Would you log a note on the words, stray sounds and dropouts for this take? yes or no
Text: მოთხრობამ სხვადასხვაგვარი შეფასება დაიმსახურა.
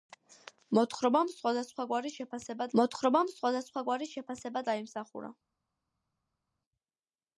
yes